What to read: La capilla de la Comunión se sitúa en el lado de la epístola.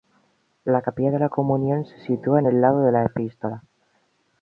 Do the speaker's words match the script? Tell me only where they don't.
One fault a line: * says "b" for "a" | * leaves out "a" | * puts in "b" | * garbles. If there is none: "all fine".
all fine